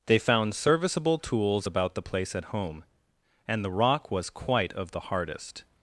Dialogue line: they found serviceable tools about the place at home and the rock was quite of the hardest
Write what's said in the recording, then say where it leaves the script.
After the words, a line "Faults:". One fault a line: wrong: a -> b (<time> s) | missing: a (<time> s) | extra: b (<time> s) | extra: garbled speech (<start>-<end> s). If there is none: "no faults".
they found serviceable tools about the place at home and the rock was quite of the hardest
Faults:
no faults